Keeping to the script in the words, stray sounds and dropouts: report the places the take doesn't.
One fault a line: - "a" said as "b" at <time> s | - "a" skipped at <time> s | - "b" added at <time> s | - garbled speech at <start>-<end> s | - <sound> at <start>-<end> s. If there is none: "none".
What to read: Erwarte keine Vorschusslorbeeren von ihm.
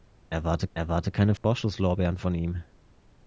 - "erwarte" added at 0.7 s
- dropout at 1.4-1.4 s